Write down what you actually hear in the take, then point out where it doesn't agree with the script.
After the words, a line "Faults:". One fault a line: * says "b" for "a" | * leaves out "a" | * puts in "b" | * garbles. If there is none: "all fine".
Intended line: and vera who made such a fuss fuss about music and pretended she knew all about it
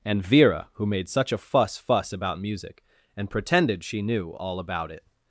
and vera who made such a fuss fuss about music and pretended she knew all about it
Faults:
all fine